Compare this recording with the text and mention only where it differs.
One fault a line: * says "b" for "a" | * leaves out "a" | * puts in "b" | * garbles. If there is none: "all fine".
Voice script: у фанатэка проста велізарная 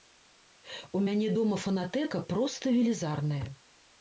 * puts in "мяне дома"